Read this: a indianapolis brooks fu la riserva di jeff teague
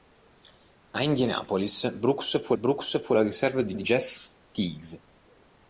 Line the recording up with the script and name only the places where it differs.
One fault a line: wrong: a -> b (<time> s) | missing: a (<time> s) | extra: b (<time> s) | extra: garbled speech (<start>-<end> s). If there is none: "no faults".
extra: brooks fu (2.5 s)
extra: di (3.7 s)